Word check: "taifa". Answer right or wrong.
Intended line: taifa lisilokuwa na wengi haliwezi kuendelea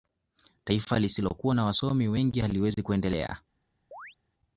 right